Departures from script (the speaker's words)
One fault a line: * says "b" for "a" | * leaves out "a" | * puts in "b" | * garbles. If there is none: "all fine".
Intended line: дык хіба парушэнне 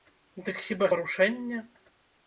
all fine